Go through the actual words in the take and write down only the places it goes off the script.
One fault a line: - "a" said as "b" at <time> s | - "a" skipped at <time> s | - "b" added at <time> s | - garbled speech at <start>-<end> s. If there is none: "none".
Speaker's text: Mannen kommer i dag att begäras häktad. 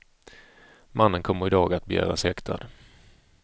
none